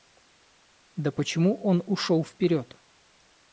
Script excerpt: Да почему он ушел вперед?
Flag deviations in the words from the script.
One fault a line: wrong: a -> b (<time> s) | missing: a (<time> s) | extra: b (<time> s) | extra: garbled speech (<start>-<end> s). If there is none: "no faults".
no faults